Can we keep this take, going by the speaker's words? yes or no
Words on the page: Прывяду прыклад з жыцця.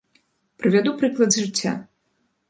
yes